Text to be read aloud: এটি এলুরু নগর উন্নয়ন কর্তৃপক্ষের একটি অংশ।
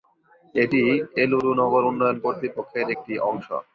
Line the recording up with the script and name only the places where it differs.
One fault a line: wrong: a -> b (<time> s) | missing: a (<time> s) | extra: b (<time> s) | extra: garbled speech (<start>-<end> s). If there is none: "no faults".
no faults